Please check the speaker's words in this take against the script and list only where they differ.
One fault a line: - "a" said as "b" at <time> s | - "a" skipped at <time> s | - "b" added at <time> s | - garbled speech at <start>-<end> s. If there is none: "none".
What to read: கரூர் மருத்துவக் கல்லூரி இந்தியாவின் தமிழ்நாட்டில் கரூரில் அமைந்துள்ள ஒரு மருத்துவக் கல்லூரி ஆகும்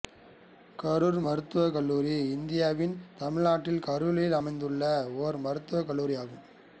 none